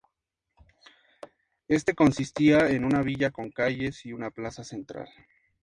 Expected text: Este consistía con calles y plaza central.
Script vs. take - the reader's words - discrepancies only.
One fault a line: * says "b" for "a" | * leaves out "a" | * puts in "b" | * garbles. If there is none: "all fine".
* puts in "en una villa"
* puts in "una"